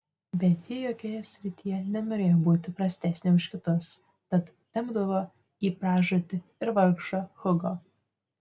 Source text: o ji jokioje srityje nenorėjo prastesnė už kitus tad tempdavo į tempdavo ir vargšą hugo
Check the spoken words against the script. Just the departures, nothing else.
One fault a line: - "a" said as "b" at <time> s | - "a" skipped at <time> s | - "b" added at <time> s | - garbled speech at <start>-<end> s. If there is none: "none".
- "o" said as "bet" at 0.4 s
- "būti" added at 2.5 s
- "tempdavo" said as "pražūtį" at 5.8 s